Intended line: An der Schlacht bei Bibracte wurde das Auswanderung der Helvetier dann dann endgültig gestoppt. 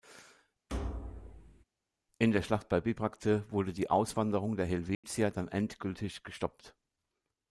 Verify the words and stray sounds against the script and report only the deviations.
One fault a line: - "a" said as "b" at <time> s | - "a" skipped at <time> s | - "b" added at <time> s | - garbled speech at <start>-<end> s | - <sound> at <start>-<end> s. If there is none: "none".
- thud at 0.7-1.6 s
- "An" said as "In" at 2.2 s
- "das" said as "die" at 3.7 s
- dropout at 4.9-5.0 s
- "dann" skipped at 5.5 s